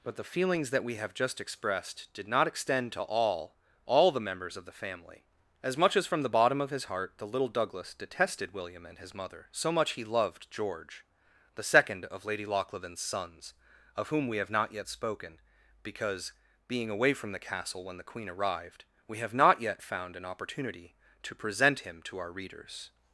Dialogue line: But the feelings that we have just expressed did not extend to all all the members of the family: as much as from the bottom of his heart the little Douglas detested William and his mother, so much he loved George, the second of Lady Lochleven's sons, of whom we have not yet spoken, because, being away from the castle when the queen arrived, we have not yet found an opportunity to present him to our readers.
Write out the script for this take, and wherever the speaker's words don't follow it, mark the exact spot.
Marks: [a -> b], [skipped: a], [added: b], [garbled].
But the feelings that we have just expressed did not extend to all all the members of the family: as much as from the bottom of his heart the little Douglas detested William and his mother, so much he loved George, the second of Lady Lochleven's sons, of whom we have not yet spoken, because, being away from the castle when the queen arrived, we have not yet found an opportunity to present him to our readers.